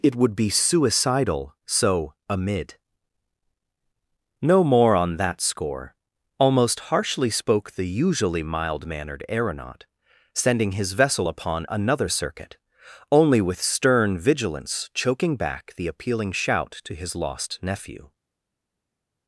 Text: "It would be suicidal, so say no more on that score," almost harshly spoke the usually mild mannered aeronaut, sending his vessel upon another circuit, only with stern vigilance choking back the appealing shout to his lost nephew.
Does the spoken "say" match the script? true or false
false